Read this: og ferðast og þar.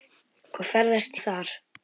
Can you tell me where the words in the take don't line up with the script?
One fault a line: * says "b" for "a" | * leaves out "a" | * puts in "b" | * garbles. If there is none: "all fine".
all fine